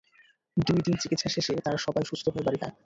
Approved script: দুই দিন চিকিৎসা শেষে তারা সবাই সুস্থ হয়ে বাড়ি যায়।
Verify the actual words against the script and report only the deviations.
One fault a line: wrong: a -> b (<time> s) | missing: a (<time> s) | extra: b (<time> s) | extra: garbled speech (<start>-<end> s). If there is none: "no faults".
no faults